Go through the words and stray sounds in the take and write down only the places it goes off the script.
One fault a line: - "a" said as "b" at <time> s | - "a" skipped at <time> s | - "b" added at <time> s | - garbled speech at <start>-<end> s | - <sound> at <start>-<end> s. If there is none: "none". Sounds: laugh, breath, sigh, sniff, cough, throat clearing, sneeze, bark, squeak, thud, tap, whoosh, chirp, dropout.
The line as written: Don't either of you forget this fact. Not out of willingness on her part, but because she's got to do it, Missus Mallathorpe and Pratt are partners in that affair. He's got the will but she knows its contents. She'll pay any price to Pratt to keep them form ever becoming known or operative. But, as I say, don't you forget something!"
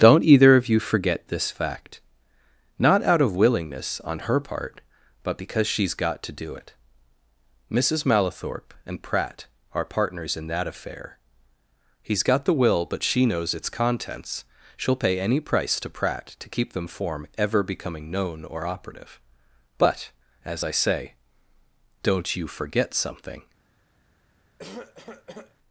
- cough at 24.6-25.6 s